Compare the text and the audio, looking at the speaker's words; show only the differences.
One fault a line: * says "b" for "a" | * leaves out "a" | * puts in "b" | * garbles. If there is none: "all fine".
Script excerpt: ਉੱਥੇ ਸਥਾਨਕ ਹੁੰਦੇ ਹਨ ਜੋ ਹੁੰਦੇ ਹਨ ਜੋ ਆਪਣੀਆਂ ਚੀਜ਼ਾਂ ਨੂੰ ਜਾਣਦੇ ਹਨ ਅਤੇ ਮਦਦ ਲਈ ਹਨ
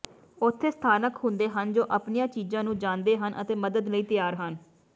* leaves out "ਹੁੰਦੇ ਹਨ ਜੋ"
* puts in "ਤਿਆਰ"